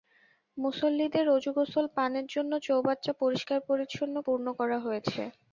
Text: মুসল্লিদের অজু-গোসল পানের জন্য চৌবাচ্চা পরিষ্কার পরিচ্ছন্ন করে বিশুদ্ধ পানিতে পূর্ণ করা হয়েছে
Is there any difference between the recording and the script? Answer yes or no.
yes